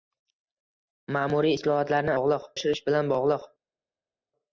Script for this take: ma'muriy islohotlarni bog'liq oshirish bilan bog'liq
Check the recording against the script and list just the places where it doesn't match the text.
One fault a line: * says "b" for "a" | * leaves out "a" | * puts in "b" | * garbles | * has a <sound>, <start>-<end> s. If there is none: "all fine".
all fine